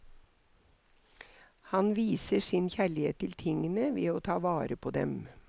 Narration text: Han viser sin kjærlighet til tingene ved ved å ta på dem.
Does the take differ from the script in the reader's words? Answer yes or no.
yes